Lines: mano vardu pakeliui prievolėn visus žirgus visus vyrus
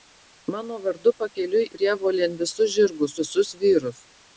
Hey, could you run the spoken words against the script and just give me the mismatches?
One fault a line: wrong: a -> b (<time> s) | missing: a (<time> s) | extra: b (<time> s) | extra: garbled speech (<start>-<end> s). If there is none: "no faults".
no faults